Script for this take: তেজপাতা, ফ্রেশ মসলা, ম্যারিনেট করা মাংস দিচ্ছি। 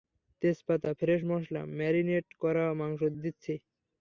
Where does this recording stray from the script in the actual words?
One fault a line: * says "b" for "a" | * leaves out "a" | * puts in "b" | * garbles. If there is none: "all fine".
all fine